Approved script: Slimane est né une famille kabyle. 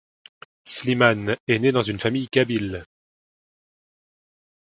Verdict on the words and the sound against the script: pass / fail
fail